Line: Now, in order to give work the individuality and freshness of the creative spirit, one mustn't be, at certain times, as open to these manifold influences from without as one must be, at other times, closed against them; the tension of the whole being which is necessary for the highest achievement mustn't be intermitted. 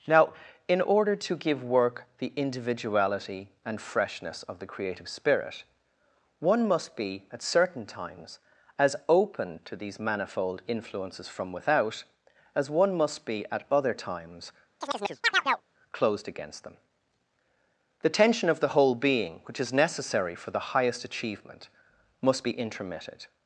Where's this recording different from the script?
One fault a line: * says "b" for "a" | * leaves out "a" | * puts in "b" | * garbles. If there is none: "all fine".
* says "must" for "mustn't"
* says "must" for "mustn't"